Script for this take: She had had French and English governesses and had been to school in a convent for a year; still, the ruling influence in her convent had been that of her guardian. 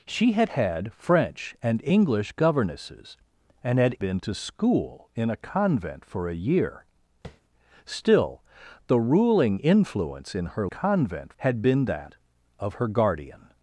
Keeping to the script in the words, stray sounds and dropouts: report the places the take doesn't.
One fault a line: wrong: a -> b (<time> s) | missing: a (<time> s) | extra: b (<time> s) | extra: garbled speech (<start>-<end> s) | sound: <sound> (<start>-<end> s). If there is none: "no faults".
sound: tap (7.2-7.4 s)